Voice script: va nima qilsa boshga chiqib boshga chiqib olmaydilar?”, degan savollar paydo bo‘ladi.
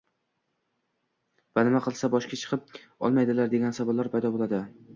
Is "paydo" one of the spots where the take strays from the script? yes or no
no